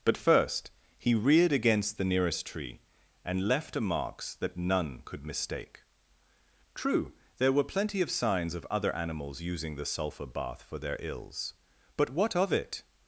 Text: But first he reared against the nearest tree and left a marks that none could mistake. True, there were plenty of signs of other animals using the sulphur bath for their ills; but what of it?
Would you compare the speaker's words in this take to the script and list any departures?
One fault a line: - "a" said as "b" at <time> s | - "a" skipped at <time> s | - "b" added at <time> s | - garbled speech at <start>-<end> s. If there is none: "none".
none